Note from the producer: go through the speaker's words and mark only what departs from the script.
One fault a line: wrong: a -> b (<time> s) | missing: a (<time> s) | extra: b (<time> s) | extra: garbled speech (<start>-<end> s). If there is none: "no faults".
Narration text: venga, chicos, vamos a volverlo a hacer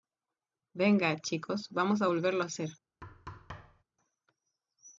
no faults